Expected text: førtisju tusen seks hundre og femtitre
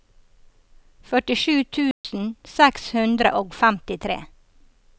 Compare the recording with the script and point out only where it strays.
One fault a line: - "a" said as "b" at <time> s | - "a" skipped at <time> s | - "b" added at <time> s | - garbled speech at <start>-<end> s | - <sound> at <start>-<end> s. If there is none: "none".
- dropout at 1.9-2.0 s